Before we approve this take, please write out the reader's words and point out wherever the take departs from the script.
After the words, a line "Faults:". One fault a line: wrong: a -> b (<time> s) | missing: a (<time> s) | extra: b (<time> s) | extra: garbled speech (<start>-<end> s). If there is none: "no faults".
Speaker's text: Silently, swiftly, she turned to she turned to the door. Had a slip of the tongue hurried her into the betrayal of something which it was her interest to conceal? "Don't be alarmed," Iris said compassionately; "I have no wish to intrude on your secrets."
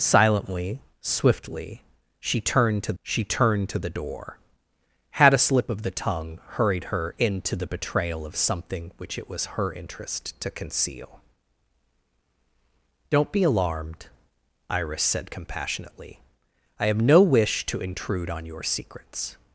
Silently, swiftly, she turned to she turned to the door. Had a slip of the tongue hurried her into the betrayal of something which it was her interest to conceal? "Don't be alarmed," Iris said compassionately; "I have no wish to intrude on your secrets."
Faults:
no faults